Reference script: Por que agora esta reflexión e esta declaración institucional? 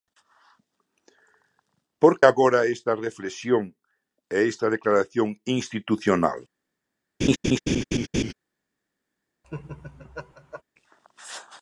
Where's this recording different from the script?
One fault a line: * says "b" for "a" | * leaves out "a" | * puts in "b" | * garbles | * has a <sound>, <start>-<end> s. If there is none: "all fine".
* leaves out "que"
* has a laugh, 7.2-8.3 s
* has a laugh, 9.4-10.6 s